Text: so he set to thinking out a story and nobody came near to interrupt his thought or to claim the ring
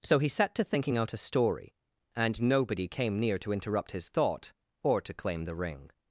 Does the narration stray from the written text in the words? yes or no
no